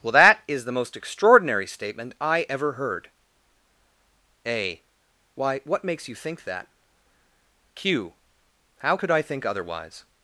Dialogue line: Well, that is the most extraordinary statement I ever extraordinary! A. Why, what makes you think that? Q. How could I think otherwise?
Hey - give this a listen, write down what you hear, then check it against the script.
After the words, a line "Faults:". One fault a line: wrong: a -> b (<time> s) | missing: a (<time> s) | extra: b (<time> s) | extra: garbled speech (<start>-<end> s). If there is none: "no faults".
Well, that is the most extraordinary statement I ever heard! A. Why, what makes you think that? Q. How could I think otherwise?
Faults:
wrong: extraordinary -> heard (2.7 s)